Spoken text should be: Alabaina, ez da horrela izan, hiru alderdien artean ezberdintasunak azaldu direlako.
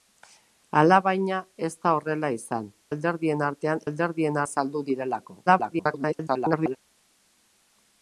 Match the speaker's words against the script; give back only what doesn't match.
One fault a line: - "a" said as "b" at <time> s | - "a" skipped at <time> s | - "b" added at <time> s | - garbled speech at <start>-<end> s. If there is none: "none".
- "hiru" skipped at 2.6 s
- "ezberdintasunak" said as "alderdien" at 3.9 s
- garbled speech at 5.5-6.8 s